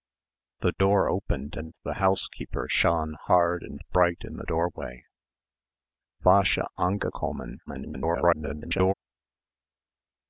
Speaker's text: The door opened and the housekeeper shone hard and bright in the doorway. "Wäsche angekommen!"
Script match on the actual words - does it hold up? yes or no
no